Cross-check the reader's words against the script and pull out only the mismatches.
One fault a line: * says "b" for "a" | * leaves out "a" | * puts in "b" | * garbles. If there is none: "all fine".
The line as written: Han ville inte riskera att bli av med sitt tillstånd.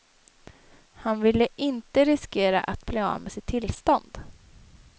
all fine